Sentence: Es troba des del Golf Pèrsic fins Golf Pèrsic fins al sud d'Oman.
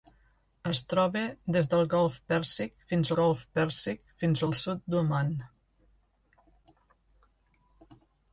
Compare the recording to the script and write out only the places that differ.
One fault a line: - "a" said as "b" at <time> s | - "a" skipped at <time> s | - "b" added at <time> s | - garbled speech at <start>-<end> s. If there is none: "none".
none